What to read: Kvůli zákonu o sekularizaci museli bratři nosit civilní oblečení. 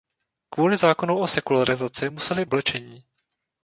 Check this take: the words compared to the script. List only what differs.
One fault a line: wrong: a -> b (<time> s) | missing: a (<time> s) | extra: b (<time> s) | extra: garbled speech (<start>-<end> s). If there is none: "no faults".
missing: bratři nosit civilní (2.5 s)